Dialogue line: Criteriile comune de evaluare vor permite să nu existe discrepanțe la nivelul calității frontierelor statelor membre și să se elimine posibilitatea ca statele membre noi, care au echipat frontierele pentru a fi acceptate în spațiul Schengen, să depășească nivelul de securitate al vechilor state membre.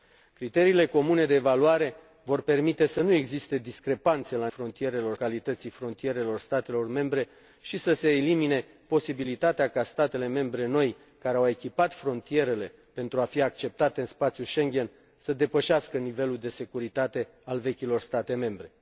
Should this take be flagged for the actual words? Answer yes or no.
yes